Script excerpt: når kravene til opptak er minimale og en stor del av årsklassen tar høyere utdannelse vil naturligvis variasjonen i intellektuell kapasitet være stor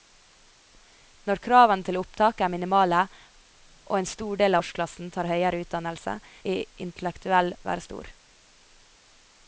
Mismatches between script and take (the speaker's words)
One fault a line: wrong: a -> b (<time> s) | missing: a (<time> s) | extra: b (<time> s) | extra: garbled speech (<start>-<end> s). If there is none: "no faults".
missing: av (4.6 s)
missing: vil naturligvis variasjonen (6.2 s)
missing: kapasitet (7.6 s)